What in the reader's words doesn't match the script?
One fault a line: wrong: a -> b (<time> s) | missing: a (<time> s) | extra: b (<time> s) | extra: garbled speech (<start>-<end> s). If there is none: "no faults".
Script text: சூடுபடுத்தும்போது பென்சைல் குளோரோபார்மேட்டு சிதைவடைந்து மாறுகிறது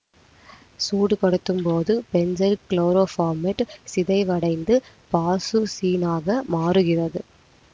extra: பாசுசீனாக (5.1 s)